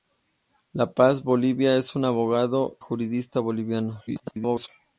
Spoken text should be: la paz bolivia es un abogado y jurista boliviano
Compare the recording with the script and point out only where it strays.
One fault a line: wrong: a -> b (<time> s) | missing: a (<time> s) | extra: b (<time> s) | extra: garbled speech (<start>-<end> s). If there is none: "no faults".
missing: y (2.8 s)
extra: garbled speech (4.1-4.7 s)